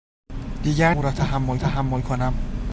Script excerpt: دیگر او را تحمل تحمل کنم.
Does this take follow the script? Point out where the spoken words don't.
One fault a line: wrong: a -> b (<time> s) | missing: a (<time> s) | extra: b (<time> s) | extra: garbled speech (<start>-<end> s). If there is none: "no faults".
no faults